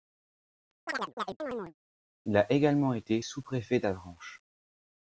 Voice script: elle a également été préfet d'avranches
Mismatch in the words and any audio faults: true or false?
true